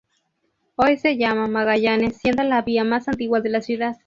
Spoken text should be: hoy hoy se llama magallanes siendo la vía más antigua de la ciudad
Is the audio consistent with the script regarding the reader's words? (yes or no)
no